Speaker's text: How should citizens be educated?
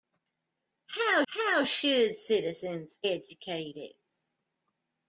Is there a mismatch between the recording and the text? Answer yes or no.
yes